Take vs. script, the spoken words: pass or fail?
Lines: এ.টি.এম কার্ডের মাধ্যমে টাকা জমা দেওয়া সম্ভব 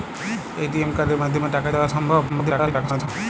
fail